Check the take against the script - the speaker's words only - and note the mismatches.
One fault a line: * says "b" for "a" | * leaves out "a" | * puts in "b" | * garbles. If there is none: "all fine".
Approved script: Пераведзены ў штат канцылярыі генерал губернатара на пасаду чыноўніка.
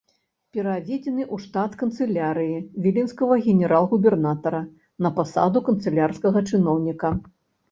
* puts in "віленскага"
* puts in "канцылярскага"